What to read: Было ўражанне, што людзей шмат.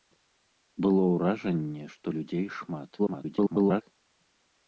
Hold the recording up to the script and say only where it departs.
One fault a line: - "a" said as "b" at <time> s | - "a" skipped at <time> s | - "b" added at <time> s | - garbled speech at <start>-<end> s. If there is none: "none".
- garbled speech at 3.0-3.8 s